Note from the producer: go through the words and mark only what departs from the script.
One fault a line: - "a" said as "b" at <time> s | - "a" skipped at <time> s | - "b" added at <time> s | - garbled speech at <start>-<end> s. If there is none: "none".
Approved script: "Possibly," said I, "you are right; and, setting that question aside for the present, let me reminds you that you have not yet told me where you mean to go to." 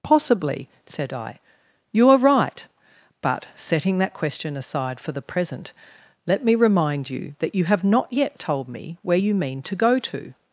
- "and" said as "but" at 3.2 s
- "reminds" said as "remind" at 6.5 s